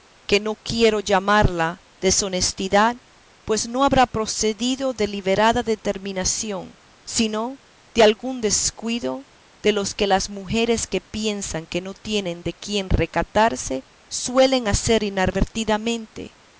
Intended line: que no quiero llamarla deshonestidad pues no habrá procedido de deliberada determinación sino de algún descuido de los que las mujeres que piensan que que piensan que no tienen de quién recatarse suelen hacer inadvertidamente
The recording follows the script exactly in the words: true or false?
false